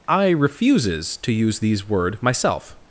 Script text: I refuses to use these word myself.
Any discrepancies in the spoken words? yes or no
no